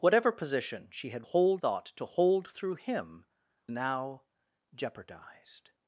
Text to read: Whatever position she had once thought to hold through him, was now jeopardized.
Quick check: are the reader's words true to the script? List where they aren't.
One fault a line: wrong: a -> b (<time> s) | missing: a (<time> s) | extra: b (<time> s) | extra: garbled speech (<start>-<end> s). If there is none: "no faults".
wrong: once -> hold (1.2 s)
missing: was (3.2 s)